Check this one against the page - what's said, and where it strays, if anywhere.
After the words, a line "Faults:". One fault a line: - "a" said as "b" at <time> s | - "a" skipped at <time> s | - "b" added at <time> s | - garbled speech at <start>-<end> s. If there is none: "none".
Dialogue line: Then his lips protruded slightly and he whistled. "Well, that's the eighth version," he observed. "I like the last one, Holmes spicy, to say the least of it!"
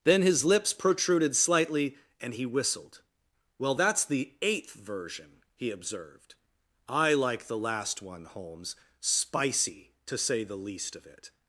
Then his lips protruded slightly and he whistled. "Well, that's the eighth version," he observed. "I like the last one, Holmes spicy, to say the least of it!"
Faults:
none